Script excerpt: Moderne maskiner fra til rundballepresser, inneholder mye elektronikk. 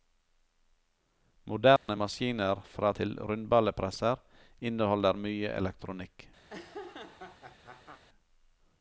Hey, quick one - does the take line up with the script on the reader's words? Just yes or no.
yes